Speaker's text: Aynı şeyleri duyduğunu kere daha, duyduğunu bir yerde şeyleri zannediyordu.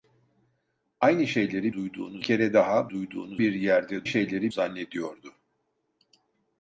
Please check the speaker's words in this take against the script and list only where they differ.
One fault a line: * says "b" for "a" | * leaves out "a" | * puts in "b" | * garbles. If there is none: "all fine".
all fine